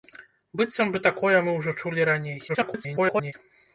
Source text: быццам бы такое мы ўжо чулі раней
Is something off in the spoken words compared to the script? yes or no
yes